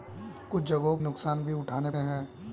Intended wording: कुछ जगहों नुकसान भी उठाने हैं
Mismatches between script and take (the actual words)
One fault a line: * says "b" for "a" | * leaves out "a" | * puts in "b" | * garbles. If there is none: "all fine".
all fine